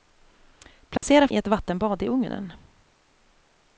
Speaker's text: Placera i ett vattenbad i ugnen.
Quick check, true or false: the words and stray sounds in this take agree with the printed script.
false